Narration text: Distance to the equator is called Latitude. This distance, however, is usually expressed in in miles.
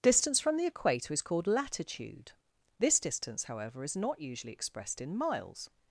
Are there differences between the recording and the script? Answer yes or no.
yes